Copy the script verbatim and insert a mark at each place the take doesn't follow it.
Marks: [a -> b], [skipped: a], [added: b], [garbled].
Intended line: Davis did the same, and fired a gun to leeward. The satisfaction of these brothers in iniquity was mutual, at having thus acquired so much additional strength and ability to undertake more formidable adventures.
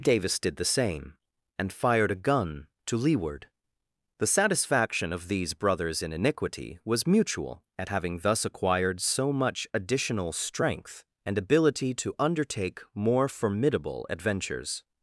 Davis did the same, and fired a gun to leeward. The satisfaction of these brothers in iniquity was mutual, at having thus acquired so much additional strength and ability to undertake more formidable adventures.